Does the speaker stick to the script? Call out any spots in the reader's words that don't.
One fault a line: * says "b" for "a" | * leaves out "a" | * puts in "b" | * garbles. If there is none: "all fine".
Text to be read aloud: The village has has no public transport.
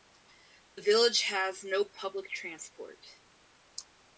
* leaves out "has"